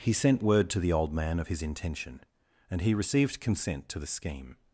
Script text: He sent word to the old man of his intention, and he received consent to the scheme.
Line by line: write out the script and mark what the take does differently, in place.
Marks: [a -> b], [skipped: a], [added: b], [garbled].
He sent word to the old man of his intention, and he received consent to the scheme.